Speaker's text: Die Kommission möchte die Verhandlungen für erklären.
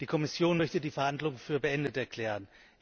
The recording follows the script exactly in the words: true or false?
false